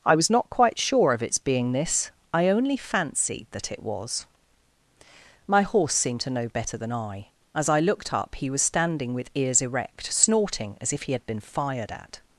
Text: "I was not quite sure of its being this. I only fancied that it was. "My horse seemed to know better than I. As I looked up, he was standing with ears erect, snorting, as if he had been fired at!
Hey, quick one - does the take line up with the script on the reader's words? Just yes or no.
yes